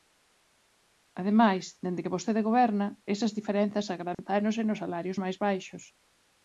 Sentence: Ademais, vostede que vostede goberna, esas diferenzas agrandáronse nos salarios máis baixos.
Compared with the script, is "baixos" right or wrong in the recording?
right